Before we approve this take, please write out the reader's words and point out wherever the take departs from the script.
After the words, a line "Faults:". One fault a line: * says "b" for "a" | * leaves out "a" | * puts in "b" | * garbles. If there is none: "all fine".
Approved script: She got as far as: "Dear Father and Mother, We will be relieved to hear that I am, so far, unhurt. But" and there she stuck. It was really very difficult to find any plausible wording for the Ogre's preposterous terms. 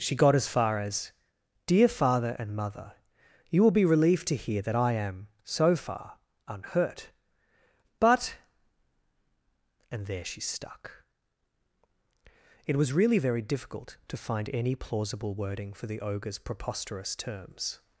She got as far as: "Dear Father and Mother, You will be relieved to hear that I am, so far, unhurt. But" and there she stuck. It was really very difficult to find any plausible wording for the Ogre's preposterous terms.
Faults:
* says "You" for "We"